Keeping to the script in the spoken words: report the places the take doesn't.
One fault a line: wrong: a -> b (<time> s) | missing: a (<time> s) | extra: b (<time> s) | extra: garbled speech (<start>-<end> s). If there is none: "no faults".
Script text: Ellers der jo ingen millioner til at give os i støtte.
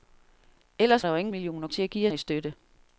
no faults